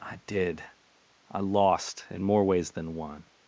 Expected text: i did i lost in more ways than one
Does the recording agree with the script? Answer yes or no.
yes